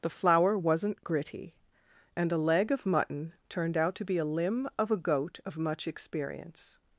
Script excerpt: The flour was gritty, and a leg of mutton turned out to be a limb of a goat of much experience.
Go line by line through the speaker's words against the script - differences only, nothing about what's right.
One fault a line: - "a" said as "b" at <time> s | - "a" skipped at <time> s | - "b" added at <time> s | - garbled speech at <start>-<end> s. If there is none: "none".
- "was" said as "wasn't" at 0.6 s